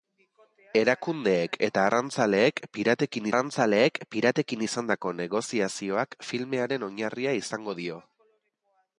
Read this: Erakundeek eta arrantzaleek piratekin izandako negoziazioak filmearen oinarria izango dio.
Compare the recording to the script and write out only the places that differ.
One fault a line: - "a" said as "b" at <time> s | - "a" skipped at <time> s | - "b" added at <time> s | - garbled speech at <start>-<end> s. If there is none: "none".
- "arrantzaleek piratekin" added at 3.3 s